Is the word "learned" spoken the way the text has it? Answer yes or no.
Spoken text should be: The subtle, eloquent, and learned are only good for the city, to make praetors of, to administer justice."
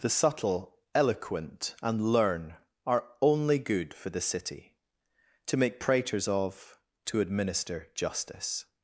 no